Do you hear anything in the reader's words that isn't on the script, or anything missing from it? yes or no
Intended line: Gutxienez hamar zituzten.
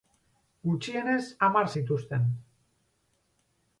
no